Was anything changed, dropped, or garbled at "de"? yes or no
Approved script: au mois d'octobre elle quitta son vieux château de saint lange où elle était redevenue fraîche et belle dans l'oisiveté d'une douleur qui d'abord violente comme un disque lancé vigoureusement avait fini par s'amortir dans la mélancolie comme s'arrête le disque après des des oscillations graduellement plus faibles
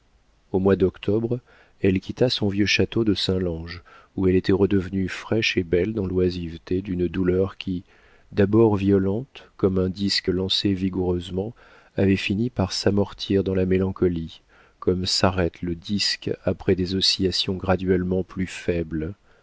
no